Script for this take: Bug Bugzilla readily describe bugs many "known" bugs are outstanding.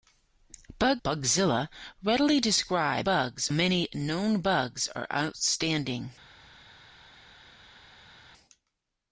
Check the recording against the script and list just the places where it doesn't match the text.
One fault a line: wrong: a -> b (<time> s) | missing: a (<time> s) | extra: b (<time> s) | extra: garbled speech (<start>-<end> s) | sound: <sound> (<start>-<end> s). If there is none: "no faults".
no faults